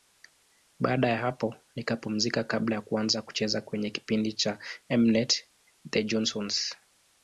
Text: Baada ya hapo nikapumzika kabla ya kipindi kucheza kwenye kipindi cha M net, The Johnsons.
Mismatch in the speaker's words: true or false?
true